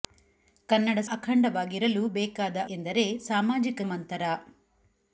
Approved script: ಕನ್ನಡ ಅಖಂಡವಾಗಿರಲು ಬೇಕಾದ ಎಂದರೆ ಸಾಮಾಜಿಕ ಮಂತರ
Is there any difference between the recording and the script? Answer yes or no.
no